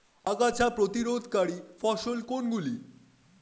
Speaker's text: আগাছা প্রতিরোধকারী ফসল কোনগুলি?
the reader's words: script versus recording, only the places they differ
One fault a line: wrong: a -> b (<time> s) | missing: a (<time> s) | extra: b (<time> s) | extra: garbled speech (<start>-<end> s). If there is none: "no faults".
no faults